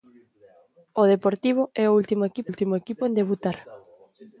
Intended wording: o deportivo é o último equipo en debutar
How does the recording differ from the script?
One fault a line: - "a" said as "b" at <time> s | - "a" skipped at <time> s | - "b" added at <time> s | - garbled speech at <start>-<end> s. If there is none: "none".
- "último equipo" added at 2.5 s